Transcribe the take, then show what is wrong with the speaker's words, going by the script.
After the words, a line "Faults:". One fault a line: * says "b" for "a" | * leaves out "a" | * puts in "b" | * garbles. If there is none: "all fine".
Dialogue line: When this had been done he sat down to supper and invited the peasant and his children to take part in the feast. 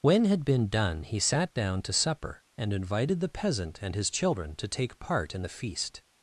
When had been done he sat down to supper and invited the peasant and his children to take part in the feast.
Faults:
* leaves out "this"